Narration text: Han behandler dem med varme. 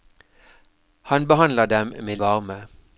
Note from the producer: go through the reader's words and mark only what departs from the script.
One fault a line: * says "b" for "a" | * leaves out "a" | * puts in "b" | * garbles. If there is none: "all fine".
all fine